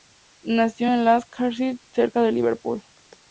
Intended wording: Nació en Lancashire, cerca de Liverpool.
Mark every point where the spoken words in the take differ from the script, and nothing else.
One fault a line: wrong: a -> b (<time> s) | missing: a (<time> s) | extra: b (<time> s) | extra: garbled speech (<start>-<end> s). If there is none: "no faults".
no faults